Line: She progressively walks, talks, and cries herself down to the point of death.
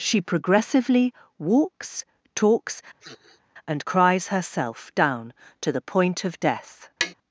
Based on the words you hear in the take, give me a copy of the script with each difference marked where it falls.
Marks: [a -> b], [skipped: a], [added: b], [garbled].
She progressively walks, talks, and cries herself down to the point of death.